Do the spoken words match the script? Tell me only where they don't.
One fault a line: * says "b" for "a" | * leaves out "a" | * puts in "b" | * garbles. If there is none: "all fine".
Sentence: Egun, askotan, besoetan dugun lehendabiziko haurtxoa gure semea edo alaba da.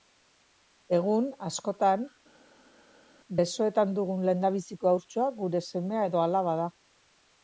all fine